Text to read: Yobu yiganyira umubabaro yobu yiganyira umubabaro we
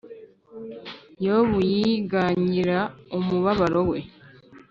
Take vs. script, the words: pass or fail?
fail